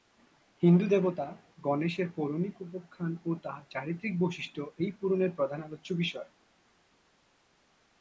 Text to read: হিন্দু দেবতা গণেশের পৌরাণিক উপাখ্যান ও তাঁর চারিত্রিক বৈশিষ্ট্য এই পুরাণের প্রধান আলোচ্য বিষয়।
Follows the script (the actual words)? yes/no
yes